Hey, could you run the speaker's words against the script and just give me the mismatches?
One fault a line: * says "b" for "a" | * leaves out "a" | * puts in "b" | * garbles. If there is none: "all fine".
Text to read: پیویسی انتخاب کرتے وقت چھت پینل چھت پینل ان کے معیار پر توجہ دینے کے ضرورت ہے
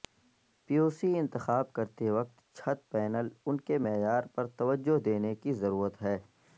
* leaves out "چھت پینل"
* says "کی" for "کے"